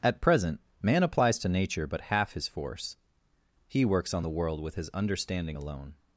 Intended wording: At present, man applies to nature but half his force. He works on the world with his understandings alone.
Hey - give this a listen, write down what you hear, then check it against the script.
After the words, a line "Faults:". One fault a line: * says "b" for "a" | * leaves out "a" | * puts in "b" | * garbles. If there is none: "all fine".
At present, man applies to nature but half his force. He works on the world with his understanding alone.
Faults:
* says "understanding" for "understandings"